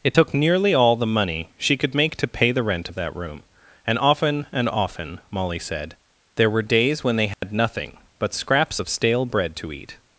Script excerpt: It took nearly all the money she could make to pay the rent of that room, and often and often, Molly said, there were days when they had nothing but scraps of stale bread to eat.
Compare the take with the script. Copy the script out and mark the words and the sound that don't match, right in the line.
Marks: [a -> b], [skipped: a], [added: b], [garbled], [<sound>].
It took nearly all the money she could make to pay the rent of that room, and often and often, Molly said, there were days when they had [dropout] nothing but scraps of stale bread to eat.